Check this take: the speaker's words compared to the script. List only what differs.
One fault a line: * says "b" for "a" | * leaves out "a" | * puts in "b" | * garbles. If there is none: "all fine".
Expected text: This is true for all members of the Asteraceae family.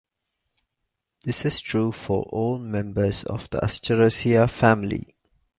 all fine